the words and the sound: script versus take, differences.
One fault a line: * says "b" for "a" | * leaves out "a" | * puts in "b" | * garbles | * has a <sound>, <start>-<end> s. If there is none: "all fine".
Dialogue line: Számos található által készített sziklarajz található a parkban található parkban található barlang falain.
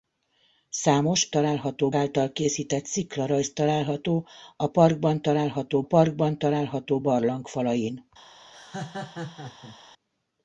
* has a laugh, 8.5-9.8 s